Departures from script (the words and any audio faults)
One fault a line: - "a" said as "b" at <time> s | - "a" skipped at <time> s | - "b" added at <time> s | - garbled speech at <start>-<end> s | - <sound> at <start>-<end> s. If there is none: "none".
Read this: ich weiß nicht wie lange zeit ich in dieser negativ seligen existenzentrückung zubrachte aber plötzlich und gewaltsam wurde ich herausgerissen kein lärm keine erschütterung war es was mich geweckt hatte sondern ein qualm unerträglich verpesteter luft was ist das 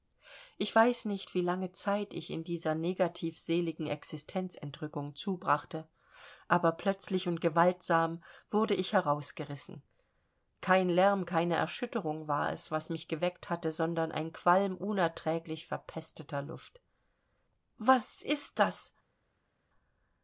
none